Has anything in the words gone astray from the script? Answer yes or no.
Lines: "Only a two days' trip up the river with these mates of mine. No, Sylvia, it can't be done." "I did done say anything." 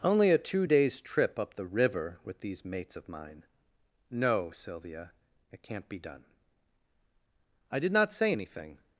yes